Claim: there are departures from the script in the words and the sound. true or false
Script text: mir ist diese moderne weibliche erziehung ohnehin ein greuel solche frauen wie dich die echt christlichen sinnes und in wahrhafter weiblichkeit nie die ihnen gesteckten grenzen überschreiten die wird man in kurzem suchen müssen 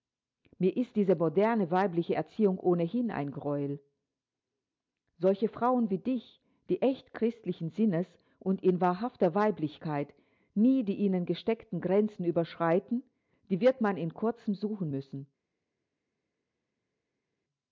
false